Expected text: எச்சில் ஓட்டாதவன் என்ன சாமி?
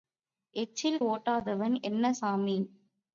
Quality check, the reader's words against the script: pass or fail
pass